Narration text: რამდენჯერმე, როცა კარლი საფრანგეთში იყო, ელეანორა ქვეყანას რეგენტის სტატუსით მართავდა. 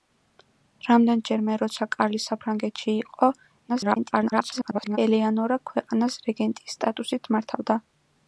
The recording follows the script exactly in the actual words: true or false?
false